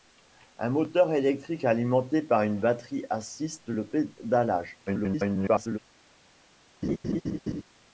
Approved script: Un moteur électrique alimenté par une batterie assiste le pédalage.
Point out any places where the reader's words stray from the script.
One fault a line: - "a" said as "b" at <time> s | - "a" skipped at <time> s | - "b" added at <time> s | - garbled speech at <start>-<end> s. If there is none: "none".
- garbled speech at 4.9-5.8 s